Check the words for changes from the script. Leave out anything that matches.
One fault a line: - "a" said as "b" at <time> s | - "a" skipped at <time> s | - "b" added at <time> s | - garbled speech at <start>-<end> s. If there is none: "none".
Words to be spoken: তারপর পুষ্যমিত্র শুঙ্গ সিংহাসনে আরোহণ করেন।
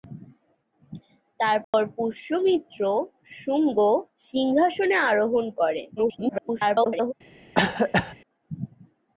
- garbled speech at 6.0-7.1 s